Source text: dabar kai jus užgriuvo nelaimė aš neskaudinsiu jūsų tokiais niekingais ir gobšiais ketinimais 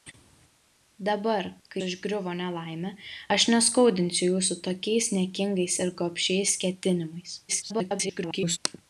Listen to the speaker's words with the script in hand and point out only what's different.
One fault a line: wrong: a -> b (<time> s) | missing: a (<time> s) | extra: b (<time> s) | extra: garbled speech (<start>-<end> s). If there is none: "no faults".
missing: jus (1.8 s)
extra: garbled speech (7.5-8.6 s)